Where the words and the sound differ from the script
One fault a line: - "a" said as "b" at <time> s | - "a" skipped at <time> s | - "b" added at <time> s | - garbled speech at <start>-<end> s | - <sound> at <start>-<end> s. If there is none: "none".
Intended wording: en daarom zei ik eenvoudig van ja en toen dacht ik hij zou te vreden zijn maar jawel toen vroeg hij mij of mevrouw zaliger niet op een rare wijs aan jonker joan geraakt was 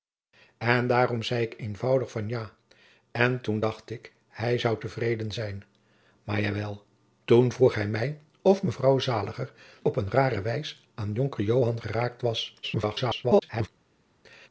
- "niet" skipped at 9.5 s
- garbled speech at 12.6-13.7 s